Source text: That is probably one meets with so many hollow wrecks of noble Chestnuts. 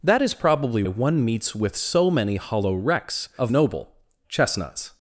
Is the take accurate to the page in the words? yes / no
yes